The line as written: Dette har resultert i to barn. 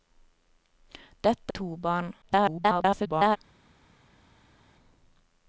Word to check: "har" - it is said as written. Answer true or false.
false